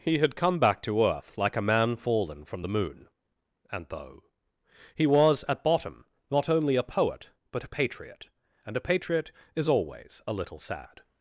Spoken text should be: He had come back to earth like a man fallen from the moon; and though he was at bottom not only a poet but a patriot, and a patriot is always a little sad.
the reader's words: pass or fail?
pass